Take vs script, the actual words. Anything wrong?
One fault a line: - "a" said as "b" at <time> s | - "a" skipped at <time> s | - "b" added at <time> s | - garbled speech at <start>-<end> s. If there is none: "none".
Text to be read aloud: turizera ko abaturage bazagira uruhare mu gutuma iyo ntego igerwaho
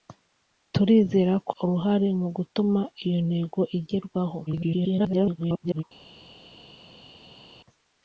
- "abaturage bazagira" skipped at 1.5 s
- garbled speech at 4.5-5.8 s